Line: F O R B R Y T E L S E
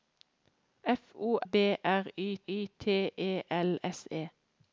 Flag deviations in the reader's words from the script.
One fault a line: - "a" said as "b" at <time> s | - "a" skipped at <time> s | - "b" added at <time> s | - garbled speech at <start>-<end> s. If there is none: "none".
- "R" skipped at 1.4 s
- "Y" added at 2.5 s